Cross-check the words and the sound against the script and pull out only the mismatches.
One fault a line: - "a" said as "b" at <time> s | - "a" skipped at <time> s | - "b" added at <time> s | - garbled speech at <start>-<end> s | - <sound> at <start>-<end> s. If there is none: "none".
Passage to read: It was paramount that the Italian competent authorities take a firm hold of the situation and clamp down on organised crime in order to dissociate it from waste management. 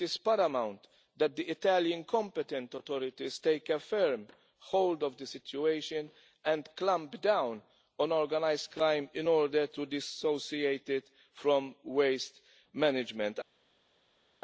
- "was" said as "is" at 0.1 s